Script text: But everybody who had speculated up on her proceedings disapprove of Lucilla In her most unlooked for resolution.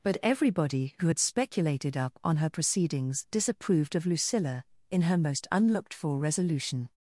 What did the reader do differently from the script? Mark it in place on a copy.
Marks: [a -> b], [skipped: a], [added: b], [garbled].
But everybody who had speculated up on her proceedings [disapprove -> disapproved] of Lucilla In her most unlooked for resolution.